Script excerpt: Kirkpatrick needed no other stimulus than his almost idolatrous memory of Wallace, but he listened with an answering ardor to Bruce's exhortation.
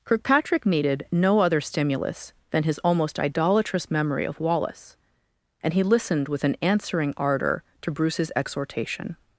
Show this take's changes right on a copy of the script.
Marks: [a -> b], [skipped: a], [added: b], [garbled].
Kirkpatrick needed no other stimulus than his almost idolatrous memory of Wallace, [but -> and] he listened with an answering ardor to Bruce's exhortation.